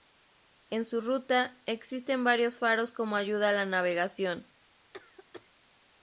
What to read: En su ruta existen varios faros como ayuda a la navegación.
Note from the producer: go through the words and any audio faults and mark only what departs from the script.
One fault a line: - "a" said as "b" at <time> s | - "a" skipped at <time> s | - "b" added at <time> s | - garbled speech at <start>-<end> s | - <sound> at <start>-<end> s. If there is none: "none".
- cough at 4.9-5.5 s